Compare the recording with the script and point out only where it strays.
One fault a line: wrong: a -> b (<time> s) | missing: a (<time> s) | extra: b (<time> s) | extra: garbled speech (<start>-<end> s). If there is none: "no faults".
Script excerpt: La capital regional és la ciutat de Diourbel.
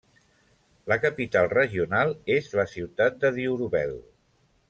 no faults